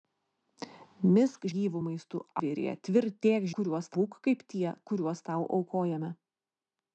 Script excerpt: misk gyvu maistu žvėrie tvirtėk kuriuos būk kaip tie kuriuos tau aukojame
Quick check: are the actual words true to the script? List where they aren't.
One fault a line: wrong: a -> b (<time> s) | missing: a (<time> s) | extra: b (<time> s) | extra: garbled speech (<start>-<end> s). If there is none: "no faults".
no faults